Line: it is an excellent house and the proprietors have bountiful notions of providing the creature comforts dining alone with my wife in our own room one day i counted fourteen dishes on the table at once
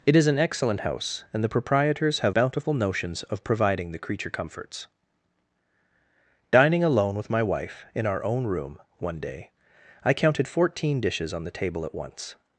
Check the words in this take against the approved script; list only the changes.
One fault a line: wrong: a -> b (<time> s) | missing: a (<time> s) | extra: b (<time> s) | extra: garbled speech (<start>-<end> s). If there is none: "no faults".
no faults